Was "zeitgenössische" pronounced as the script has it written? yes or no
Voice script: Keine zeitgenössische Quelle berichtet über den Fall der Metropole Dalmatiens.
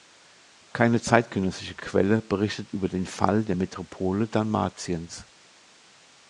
yes